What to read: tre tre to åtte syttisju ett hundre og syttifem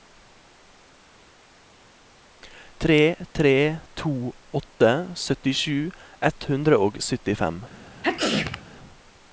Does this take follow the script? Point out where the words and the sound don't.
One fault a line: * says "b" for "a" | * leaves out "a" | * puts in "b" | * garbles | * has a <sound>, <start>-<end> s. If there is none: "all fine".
* has a sneeze, 8.0-8.6 s